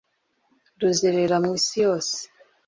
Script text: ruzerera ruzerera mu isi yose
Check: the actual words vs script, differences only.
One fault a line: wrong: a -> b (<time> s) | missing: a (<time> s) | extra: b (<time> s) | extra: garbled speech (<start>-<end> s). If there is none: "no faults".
missing: ruzerera (1.4 s)